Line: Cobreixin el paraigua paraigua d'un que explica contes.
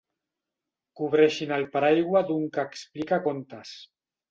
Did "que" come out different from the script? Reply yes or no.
no